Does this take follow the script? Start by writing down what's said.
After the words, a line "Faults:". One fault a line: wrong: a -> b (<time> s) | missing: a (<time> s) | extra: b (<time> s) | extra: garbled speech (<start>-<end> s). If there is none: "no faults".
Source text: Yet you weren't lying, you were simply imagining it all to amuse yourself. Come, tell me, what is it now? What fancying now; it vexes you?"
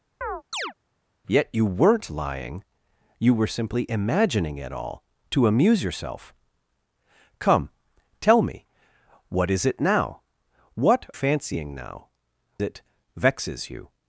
Yet you weren't lying, you were simply imagining it all to amuse yourself. Come, tell me, what is it now? What fancying now; it vexes you?"
Faults:
no faults